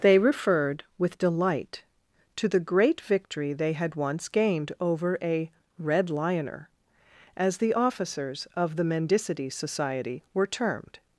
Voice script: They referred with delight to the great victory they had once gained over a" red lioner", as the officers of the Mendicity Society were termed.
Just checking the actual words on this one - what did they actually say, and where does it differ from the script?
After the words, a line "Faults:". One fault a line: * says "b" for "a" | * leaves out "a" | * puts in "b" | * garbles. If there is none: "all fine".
They referred with delight to the great victory they had once gained over a" red lioner", as the officers of the Mendicity Society were termed.
Faults:
all fine